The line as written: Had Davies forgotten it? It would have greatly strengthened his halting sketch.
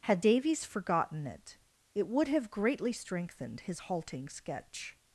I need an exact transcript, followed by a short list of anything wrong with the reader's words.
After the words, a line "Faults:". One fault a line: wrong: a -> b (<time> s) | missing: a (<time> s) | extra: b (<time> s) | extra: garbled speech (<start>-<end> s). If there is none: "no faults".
Had Davies forgotten it? It would have greatly strengthened his halting sketch.
Faults:
no faults